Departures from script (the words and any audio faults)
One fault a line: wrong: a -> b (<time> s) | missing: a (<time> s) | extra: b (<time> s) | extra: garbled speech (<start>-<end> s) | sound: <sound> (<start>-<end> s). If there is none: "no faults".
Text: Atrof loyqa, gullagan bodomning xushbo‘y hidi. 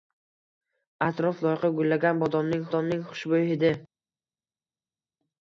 extra: bodomning (2.7 s)